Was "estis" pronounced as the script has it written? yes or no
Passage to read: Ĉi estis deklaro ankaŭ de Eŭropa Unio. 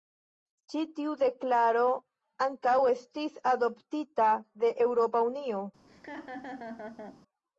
no